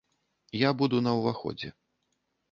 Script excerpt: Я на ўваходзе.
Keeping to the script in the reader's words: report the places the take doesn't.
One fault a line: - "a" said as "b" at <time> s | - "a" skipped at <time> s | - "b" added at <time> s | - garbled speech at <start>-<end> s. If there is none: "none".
- "буду" added at 0.8 s